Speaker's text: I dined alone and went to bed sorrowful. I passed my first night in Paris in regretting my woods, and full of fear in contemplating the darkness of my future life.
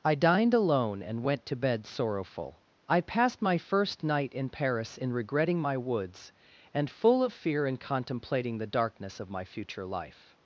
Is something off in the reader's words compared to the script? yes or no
no